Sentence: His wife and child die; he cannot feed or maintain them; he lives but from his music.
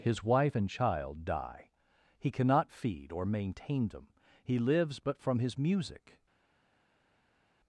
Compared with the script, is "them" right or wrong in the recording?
right